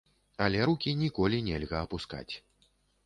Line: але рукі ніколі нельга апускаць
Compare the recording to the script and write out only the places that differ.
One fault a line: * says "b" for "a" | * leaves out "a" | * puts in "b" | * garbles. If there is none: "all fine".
all fine